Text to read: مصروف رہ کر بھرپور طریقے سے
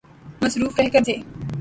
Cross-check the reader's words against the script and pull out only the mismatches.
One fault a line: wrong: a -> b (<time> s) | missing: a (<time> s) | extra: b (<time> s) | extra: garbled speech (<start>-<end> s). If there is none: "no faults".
missing: بھرپور طریقے (1.0 s)